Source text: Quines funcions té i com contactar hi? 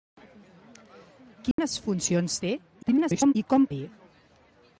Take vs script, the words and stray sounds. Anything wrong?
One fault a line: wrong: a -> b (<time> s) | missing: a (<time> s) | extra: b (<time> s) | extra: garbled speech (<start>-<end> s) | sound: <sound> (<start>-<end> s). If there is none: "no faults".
sound: dropout (1.5-1.6 s)
extra: garbled speech (2.8-3.4 s)
missing: contactar (3.7 s)